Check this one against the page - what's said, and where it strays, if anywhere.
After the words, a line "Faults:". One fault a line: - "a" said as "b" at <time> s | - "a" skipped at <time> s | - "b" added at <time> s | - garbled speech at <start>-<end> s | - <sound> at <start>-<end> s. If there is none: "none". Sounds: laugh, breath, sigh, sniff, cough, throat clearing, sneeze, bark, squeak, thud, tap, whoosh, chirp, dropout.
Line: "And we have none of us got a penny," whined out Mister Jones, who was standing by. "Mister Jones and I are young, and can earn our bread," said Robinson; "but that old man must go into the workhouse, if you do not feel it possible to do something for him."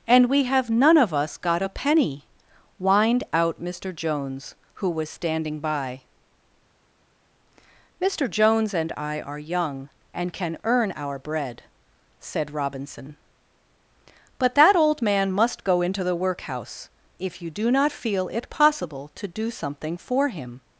"And we have none of us got a penny," whined out Mister Jones, who was standing by. "Mister Jones and I are young, and can earn our bread," said Robinson; "but that old man must go into the workhouse, if you do not feel it possible to do something for him."
Faults:
none